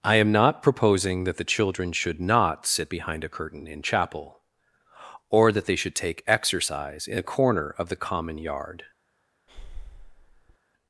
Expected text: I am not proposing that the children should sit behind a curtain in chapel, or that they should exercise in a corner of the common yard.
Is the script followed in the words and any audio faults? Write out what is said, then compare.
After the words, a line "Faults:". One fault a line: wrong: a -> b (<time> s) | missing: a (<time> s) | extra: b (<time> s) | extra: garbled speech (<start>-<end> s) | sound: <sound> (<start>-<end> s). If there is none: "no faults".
I am not proposing that the children should not sit behind a curtain in chapel, or that they should take exercise in a corner of the common yard.
Faults:
extra: not (2.2 s)
extra: take (6.0 s)
sound: breath (9.5-10.6 s)